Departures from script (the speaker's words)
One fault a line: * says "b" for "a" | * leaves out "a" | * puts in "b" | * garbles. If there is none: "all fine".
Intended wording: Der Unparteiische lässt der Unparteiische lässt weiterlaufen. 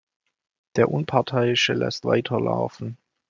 * leaves out "der Unparteiische lässt"